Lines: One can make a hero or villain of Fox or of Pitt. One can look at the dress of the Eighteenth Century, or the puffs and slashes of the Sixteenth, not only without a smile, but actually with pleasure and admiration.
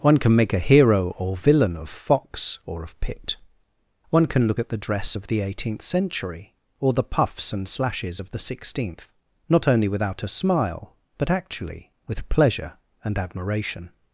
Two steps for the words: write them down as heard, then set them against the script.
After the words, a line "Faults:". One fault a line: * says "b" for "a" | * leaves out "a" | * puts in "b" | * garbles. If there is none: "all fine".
One can make a hero or villain of Fox or of Pitt. One can look at the dress of the Eighteenth Century, or the puffs and slashes of the Sixteenth, not only without a smile, but actually with pleasure and admiration.
Faults:
all fine